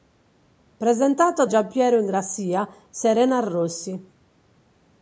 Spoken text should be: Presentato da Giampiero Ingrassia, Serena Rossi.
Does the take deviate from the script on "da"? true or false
true